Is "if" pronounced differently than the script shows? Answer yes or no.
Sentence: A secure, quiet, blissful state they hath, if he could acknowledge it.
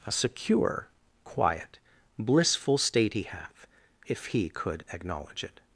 no